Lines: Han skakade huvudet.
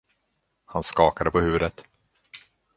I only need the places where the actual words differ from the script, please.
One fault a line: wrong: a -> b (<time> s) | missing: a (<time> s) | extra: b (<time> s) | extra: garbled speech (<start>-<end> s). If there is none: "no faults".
extra: på (1.3 s)